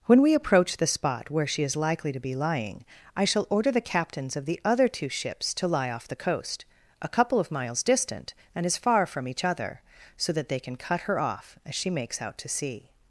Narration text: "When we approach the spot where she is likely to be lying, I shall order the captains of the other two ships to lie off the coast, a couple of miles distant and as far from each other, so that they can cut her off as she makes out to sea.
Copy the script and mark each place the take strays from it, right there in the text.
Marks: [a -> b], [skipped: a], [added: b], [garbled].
"When we approach the spot where she is likely to be lying, I shall order the captains of the other two ships to lie off the coast, a couple of miles distant and as far from each other, so that they can cut her off as she makes out to sea.